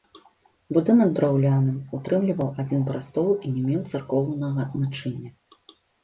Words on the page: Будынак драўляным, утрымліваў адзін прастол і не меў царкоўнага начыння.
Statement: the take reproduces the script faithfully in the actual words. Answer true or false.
true